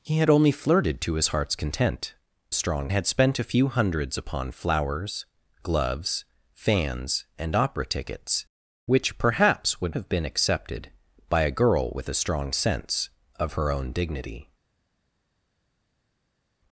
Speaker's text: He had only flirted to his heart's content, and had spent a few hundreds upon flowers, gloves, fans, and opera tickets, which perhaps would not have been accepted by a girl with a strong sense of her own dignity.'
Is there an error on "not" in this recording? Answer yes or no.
yes